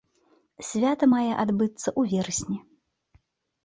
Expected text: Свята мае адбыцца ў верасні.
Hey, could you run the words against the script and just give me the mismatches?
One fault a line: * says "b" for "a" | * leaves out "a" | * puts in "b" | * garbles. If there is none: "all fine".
all fine